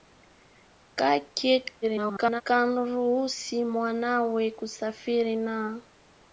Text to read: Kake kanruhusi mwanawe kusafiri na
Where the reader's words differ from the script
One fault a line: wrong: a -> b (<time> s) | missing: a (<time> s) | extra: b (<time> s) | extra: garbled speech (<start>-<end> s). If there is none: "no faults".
extra: garbled speech (1.8-2.4 s)